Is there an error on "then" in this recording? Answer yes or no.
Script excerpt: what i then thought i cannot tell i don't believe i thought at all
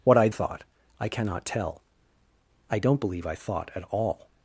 yes